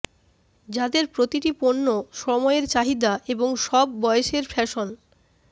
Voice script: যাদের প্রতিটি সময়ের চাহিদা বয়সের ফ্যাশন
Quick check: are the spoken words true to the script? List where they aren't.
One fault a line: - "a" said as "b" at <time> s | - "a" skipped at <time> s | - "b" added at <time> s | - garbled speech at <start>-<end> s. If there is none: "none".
- "পণ্য" added at 1.6 s
- "এবং সব" added at 3.3 s